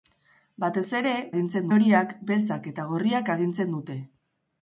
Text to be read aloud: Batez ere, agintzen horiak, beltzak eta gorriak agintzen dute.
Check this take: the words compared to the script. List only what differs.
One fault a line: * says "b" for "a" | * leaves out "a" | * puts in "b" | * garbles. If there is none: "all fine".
all fine